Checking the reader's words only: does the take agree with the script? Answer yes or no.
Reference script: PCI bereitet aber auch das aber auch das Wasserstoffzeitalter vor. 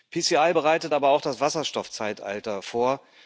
no